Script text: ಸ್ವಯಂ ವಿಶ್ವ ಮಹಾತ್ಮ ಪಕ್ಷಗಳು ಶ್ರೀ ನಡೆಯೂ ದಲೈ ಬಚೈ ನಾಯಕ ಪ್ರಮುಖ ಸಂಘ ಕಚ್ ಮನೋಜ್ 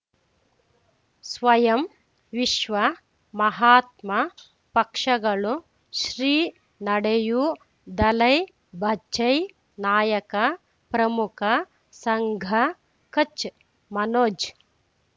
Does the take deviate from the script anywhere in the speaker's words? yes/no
no